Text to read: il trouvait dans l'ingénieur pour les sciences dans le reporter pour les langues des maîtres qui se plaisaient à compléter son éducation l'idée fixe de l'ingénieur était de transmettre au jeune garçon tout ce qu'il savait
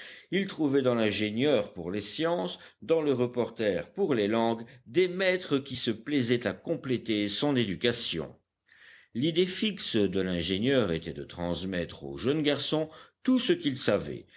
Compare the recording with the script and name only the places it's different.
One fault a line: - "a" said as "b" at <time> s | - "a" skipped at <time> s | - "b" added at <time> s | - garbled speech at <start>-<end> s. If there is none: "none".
none